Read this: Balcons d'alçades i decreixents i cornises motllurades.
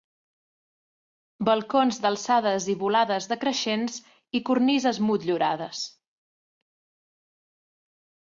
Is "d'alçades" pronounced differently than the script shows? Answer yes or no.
no